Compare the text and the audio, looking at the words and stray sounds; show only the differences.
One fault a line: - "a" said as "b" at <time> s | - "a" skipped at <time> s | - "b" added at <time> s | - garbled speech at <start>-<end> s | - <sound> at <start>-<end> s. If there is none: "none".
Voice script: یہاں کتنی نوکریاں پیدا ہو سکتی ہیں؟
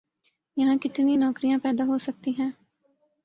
none